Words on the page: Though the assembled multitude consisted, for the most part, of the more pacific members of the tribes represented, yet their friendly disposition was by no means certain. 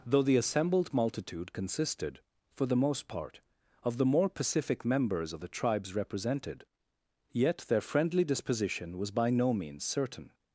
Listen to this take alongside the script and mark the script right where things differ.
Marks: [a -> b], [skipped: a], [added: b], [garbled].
Though the assembled multitude consisted, for the most part, of the more pacific members of the tribes represented, yet their friendly disposition was by no means certain.